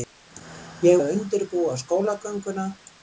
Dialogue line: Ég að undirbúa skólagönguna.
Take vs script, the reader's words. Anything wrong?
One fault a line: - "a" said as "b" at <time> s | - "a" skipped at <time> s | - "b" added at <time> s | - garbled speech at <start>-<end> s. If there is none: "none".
none